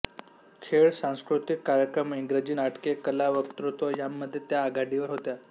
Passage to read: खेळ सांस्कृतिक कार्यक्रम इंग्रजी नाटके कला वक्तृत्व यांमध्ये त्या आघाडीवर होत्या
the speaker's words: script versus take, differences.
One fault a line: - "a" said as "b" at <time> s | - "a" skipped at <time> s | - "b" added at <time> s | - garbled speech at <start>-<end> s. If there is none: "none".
none